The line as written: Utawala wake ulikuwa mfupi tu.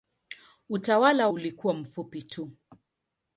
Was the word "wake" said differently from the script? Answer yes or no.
yes